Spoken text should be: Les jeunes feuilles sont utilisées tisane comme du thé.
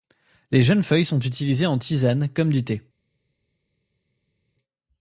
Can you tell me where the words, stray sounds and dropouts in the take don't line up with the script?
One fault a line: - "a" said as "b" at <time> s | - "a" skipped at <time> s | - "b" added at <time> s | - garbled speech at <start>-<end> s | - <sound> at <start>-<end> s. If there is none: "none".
- "en" added at 1.7 s